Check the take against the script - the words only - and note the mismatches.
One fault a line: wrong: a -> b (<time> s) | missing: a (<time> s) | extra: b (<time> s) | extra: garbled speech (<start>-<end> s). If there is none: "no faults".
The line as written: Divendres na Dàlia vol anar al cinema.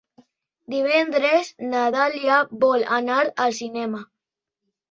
no faults